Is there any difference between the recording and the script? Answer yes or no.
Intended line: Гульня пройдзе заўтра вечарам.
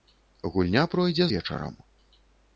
yes